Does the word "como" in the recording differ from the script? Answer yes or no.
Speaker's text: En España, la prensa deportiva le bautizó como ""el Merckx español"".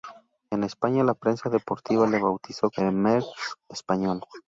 yes